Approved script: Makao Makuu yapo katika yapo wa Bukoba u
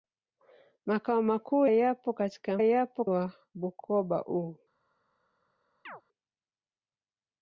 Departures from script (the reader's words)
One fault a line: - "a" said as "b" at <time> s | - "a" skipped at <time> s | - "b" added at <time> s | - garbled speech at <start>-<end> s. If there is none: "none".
none